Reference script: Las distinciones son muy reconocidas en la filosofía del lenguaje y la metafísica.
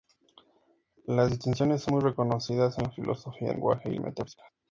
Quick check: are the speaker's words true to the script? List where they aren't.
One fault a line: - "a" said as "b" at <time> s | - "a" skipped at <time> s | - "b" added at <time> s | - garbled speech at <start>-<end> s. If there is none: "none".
- "del" skipped at 3.5 s
- "la" skipped at 4.0 s